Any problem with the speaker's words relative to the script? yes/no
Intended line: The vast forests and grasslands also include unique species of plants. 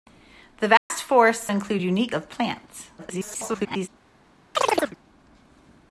yes